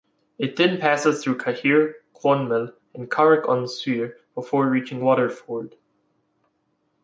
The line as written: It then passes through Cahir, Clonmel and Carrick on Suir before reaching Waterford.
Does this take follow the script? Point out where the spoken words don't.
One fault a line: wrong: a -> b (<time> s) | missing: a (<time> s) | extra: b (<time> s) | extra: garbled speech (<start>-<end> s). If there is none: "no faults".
no faults